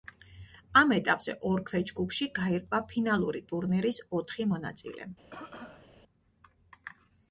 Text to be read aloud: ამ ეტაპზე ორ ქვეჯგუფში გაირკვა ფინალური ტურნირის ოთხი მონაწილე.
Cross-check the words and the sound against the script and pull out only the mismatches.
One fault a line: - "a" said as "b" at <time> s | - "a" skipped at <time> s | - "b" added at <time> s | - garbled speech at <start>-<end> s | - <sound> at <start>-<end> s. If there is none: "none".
- cough at 5.3-5.9 s